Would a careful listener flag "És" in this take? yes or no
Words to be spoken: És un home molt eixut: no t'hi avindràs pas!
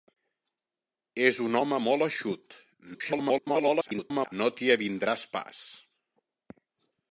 no